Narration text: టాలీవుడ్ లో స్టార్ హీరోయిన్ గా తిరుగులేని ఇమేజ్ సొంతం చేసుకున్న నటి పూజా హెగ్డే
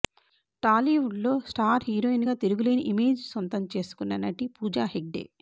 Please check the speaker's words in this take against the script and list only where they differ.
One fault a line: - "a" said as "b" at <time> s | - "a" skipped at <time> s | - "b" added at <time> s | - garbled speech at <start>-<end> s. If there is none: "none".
none